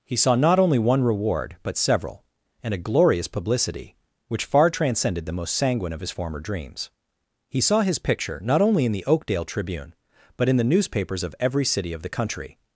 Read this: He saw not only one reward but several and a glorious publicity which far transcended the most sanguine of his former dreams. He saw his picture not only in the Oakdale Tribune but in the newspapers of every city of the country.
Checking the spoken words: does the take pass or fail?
pass